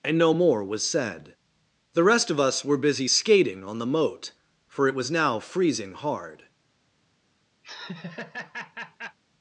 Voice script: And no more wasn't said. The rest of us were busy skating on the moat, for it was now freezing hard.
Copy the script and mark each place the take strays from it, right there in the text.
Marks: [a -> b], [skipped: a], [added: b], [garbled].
And no more [wasn't -> was] said. The rest of us were busy skating on the moat, for it was now freezing hard.